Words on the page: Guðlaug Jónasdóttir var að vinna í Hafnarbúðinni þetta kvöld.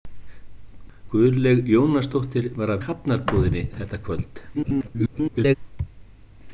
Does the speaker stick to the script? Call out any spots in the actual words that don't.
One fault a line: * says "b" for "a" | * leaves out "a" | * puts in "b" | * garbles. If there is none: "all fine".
* leaves out "vinna"
* garbles